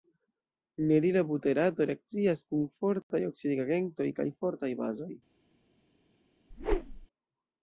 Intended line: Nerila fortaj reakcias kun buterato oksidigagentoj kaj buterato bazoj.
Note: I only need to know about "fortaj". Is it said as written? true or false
false